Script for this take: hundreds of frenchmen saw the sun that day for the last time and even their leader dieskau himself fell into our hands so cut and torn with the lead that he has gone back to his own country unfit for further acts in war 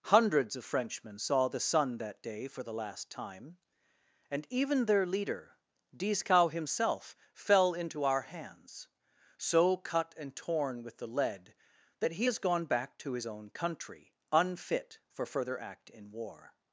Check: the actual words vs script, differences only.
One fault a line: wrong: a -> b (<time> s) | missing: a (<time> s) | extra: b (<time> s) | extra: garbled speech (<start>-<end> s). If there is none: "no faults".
wrong: acts -> act (15.6 s)